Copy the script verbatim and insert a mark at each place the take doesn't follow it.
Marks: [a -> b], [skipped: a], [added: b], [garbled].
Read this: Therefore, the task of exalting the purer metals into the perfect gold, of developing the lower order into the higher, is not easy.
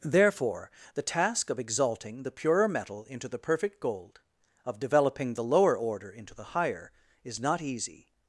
Therefore, the task of exalting the purer [metals -> metal] into the perfect gold, of developing the lower order into the higher, is not easy.